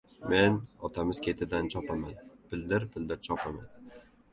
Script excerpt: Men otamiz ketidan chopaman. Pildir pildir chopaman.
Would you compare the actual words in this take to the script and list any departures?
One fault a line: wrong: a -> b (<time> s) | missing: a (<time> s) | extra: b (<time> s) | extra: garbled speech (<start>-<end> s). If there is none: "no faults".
no faults